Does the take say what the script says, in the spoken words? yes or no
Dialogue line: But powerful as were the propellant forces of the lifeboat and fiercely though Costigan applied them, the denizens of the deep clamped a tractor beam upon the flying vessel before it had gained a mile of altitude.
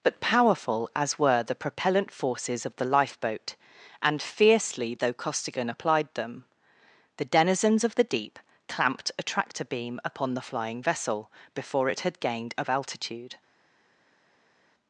no